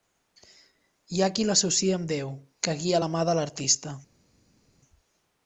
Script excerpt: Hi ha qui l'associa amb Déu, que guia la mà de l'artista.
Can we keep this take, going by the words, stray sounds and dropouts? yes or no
yes